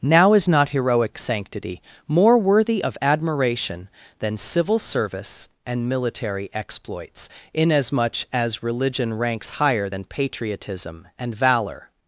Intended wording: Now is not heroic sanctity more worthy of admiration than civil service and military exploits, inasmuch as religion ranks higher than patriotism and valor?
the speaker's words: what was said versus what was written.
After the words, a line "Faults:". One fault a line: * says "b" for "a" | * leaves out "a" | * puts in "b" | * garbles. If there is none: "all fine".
Now is not heroic sanctity more worthy of admiration than civil service and military exploits, inasmuch as religion ranks higher than patriotism and valor?
Faults:
all fine